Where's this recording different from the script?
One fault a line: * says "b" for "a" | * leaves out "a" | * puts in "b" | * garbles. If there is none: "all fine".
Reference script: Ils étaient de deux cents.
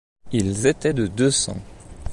all fine